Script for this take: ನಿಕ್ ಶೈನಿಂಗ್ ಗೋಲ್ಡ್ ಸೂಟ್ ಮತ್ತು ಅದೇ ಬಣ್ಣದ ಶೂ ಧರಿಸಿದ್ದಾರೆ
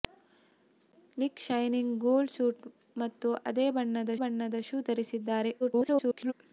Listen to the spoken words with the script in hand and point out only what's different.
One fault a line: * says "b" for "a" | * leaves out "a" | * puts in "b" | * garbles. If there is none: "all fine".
* puts in "ಬಣ್ಣದ"
* garbles